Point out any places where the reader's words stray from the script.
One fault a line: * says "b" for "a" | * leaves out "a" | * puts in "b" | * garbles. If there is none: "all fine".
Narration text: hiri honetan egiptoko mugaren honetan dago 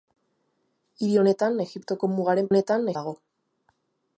all fine